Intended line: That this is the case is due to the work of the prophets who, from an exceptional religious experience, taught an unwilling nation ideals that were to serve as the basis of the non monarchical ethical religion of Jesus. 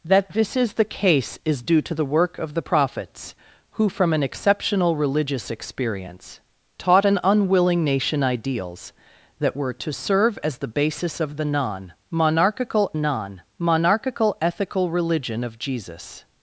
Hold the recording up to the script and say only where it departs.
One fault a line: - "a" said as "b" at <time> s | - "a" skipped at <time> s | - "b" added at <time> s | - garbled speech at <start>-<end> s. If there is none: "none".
- "non monarchical" added at 13.0 s